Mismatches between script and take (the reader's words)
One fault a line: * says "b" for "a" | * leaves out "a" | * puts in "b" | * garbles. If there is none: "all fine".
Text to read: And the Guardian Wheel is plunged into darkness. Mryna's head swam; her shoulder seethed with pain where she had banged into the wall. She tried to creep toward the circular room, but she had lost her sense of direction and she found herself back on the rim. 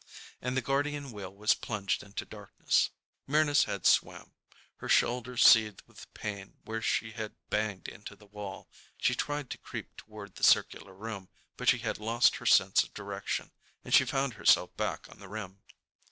* says "was" for "is"